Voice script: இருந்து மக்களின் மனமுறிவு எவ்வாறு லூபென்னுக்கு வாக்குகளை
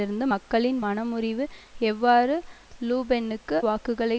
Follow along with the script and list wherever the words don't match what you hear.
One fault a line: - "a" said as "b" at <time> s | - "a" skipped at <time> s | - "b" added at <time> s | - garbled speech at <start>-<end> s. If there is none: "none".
none